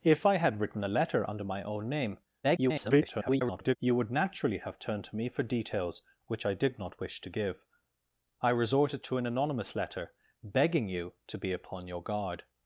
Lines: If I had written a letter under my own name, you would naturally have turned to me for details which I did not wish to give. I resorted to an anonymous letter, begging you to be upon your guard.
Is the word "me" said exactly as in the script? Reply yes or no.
yes